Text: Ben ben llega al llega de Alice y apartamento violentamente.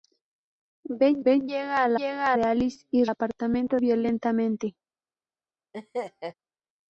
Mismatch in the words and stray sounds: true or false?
true